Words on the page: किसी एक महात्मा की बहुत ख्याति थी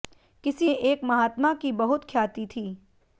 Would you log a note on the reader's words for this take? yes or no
no